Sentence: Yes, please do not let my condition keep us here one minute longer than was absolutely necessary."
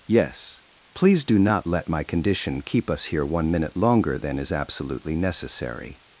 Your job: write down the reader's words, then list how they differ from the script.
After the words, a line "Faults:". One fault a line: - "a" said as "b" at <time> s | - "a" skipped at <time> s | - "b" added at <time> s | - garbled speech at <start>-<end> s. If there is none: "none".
Yes, please do not let my condition keep us here one minute longer than is absolutely necessary."
Faults:
- "was" said as "is" at 4.4 s